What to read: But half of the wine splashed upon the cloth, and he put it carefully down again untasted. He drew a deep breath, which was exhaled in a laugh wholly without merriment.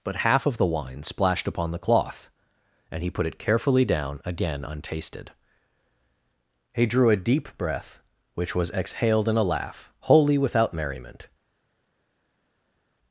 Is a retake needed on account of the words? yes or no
no